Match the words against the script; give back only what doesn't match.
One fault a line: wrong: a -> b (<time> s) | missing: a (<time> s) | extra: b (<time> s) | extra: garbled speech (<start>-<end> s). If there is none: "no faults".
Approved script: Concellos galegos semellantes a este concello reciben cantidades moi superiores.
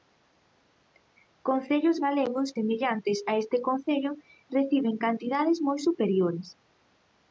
no faults